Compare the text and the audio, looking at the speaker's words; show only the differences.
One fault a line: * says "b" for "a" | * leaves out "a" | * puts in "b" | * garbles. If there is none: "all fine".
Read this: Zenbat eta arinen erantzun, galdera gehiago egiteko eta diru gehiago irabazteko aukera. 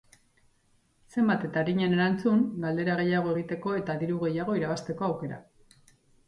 all fine